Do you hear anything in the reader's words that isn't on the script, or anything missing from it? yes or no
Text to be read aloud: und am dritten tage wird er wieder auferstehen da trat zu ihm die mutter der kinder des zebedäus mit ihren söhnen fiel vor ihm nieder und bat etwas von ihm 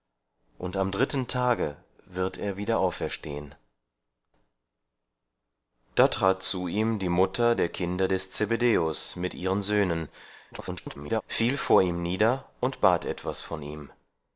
yes